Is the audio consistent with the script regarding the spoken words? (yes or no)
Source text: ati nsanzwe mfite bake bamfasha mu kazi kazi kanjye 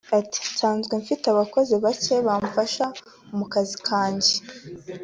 no